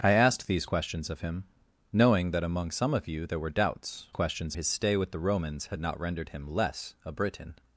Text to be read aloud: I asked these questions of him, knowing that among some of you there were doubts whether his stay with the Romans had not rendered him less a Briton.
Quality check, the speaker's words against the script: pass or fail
fail